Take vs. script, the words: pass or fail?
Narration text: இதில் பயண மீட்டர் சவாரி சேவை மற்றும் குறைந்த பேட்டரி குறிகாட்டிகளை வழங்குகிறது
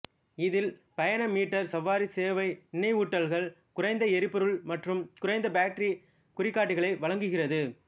fail